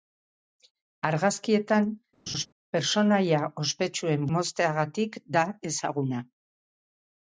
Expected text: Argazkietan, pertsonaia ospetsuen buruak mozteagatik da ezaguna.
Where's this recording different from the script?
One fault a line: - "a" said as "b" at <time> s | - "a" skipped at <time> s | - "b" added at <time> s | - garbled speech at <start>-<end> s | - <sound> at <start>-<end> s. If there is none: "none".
- laugh at 2.3-2.5 s
- "buruak" skipped at 4.3 s